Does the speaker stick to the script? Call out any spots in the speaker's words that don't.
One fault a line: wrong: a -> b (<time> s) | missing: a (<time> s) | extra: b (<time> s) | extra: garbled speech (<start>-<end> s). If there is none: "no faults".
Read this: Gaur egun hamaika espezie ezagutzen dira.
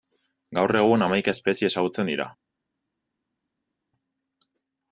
no faults